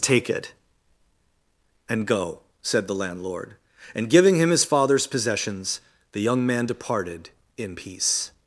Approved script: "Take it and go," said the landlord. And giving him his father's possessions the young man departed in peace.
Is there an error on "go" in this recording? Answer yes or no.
no